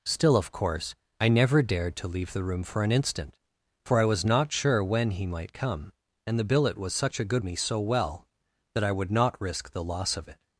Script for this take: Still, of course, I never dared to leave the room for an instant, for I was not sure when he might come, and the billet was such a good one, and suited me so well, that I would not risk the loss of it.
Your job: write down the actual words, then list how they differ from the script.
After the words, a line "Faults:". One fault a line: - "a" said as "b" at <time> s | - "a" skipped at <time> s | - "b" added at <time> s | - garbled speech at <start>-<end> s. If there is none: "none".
Still, of course, I never dared to leave the room for an instant, for I was not sure when he might come, and the billet was such a good me so well, that I would not risk the loss of it.
Faults:
- "one and suited" skipped at 7.4 s